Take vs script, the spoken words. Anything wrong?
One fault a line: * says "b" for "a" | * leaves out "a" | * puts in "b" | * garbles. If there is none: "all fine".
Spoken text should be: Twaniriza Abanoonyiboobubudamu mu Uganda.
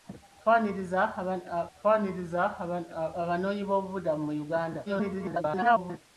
* puts in "twaniriza"
* garbles